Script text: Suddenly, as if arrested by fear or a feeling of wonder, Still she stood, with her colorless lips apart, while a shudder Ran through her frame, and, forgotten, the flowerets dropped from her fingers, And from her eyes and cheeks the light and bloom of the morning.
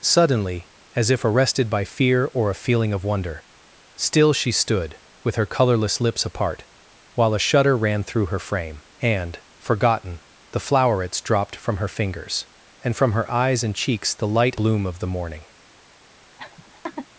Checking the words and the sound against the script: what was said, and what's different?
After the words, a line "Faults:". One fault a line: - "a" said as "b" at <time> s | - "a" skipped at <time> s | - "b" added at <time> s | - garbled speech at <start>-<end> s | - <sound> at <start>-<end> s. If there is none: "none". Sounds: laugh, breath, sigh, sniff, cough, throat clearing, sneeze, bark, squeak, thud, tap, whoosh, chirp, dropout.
Suddenly, as if arrested by fear or a feeling of wonder, Still she stood, with her colorless lips apart, while a shudder Ran through her frame, and, forgotten, the flowerets dropped from her fingers, And from her eyes and cheeks the light bloom of the morning.
Faults:
- "and" skipped at 14.6 s
- laugh at 16.4-17.1 s